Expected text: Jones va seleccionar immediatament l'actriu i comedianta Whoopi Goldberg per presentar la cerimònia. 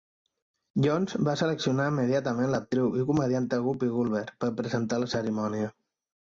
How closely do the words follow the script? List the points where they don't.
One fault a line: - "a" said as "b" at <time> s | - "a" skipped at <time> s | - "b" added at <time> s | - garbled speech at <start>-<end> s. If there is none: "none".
none